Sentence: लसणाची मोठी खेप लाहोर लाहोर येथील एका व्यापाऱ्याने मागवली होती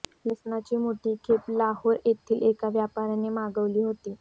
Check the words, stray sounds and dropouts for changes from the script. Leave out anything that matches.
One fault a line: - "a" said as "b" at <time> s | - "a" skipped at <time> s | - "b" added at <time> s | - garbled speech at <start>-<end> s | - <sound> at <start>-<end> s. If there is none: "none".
- "लाहोर" skipped at 1.9 s